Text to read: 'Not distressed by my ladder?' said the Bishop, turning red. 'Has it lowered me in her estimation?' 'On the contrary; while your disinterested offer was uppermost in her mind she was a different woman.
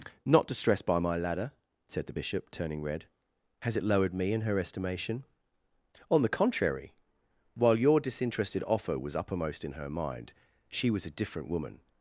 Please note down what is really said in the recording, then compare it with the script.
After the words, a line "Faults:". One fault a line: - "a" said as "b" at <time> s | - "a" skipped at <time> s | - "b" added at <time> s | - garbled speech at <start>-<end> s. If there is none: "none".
'Not distressed by my ladder?' said the Bishop, turning red. 'Has it lowered me in her estimation?' 'On the contrary; while your disinterested offer was uppermost in her mind she was a different woman.
Faults:
none